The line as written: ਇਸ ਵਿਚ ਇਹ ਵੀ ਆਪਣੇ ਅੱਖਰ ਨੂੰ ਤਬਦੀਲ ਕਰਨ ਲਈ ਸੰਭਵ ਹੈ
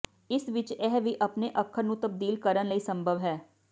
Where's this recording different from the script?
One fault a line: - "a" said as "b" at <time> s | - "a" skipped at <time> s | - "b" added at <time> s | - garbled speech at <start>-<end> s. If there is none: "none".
none